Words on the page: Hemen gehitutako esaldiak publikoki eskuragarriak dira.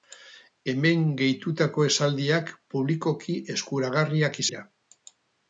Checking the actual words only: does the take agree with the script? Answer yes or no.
yes